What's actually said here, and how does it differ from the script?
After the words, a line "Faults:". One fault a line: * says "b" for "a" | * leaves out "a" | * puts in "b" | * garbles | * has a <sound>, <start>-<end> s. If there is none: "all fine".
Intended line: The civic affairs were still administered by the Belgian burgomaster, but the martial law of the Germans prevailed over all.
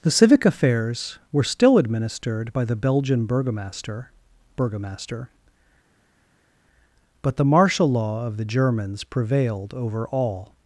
The civic affairs were still administered by the Belgian burgomaster burgomaster, but the martial law of the Germans prevailed over all.
Faults:
* puts in "burgomaster"